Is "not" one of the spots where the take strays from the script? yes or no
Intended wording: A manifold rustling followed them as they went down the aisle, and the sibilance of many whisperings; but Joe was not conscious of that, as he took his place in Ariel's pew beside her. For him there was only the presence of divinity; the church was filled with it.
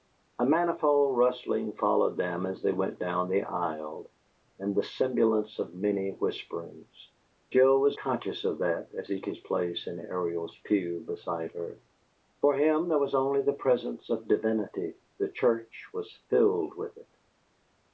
yes